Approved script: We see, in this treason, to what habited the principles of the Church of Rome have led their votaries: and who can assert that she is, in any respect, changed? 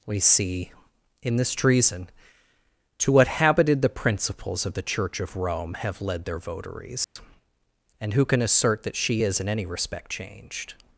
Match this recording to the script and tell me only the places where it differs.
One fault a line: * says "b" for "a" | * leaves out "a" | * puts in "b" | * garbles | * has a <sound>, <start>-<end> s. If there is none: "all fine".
* has a dropout, 7.0-7.2 s